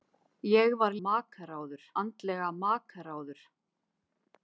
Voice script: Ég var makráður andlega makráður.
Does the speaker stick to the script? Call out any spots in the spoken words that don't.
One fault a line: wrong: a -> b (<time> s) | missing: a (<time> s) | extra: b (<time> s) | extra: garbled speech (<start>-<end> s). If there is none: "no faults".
no faults